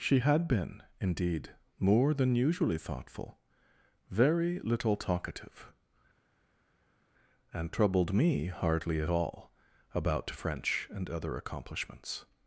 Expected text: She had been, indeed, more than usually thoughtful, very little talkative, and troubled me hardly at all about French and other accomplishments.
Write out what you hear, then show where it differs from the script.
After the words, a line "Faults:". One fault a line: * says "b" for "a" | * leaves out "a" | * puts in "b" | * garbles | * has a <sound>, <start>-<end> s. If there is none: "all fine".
She had been, indeed, more than usually thoughtful, very little talkative, and troubled me hardly at all about French and other accomplishments.
Faults:
all fine